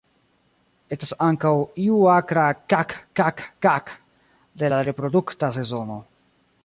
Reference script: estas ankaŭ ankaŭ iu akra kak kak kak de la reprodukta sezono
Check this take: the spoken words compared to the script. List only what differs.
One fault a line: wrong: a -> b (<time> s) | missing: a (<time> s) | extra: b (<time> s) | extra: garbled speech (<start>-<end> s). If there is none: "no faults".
missing: ankaŭ (1.5 s)